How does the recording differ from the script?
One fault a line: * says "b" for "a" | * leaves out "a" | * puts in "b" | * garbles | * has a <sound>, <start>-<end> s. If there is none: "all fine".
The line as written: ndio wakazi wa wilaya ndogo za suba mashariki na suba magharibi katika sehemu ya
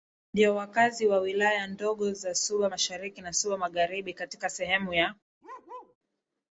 * has a bark, 5.4-6.0 s